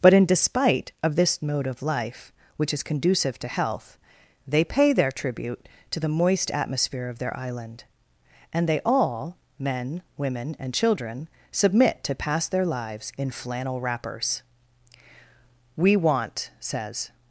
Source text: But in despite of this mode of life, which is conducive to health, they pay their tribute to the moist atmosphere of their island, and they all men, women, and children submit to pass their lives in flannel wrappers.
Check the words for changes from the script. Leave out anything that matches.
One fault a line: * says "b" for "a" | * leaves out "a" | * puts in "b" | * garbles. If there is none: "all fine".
* puts in "We want says"